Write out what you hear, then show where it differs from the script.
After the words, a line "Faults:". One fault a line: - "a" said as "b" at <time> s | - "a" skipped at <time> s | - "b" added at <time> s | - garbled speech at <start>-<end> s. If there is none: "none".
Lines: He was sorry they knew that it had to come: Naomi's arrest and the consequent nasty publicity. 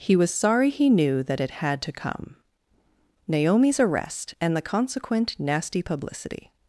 He was sorry he knew that it had to come: Naomi's arrest and the consequent nasty publicity.
Faults:
- "they" said as "he" at 0.7 s